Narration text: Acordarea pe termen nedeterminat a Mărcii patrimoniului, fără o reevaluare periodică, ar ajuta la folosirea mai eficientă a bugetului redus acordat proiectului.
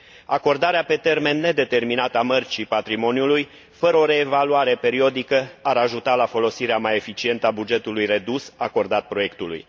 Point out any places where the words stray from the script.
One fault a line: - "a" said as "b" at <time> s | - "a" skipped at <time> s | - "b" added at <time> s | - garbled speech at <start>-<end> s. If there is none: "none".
none